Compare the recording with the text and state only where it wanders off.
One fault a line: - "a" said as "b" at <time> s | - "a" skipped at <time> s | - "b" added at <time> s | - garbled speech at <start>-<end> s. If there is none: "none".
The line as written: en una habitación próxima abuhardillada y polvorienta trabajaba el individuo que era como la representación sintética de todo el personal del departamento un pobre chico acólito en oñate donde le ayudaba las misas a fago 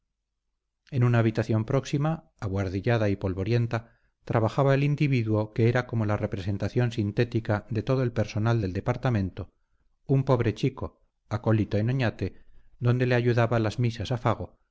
none